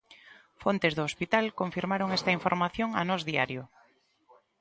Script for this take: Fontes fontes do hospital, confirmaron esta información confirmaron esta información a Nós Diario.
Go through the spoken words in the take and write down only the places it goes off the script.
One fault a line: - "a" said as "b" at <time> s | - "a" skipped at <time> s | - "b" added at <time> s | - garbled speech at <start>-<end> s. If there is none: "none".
- "fontes" skipped at 0.9 s
- "confirmaron esta información" skipped at 2.9 s